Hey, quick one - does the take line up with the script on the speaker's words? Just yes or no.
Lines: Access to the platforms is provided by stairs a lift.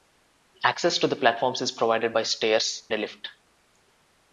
yes